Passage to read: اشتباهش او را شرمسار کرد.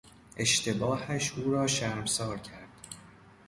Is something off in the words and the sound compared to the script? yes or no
no